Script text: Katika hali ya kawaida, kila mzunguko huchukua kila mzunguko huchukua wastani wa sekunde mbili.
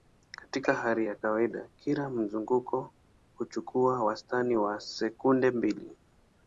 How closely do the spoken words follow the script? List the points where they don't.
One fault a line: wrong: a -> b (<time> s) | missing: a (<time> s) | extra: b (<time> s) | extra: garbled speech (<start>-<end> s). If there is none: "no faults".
missing: kila mzunguko huchukua (4.0 s)